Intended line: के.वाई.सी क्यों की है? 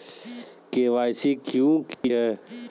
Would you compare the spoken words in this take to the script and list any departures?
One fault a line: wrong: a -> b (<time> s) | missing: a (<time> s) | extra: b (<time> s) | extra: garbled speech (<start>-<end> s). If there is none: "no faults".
no faults